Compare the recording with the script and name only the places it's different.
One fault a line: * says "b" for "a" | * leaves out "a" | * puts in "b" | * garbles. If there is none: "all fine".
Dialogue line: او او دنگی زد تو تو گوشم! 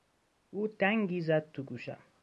* leaves out "او"
* leaves out "تو"